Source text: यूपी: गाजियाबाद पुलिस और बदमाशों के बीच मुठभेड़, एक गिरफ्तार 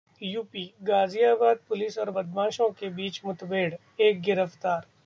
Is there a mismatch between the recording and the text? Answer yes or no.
no